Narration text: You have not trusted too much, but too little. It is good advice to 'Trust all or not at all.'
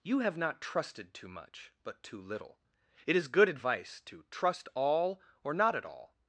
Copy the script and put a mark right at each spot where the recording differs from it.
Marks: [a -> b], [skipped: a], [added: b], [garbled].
You have not trusted too much, but too little. It is good advice to 'Trust all or not at all.'